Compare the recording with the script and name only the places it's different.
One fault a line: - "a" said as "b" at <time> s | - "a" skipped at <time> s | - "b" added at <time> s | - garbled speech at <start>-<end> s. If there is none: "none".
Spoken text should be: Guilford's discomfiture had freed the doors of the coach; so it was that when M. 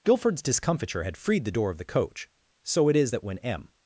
- "doors" said as "door" at 1.5 s
- "was" said as "is" at 2.9 s